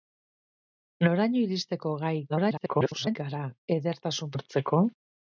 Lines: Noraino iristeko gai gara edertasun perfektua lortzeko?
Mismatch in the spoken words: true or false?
true